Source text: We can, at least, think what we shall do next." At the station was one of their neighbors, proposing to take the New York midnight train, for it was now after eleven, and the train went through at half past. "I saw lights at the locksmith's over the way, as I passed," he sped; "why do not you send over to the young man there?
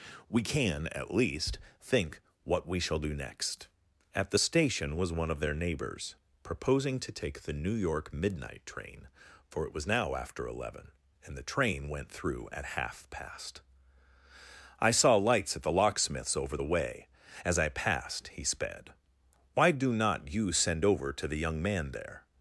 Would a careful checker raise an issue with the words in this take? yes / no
no